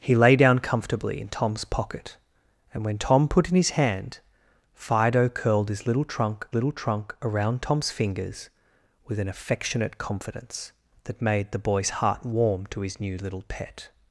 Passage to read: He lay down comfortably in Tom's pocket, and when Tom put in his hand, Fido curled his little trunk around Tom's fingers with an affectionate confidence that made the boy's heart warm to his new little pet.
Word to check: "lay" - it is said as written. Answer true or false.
true